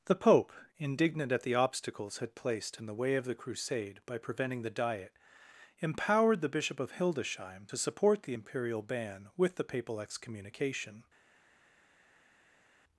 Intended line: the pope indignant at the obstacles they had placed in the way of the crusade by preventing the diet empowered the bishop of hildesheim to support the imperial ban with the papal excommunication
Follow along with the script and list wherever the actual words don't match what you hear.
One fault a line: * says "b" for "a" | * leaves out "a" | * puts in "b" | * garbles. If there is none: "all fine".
* leaves out "they"